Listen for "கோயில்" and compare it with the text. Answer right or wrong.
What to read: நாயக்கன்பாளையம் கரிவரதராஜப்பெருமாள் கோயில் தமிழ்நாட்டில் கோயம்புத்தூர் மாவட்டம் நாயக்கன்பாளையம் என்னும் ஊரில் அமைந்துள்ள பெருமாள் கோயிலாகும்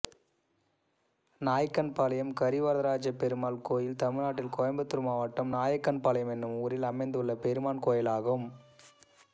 right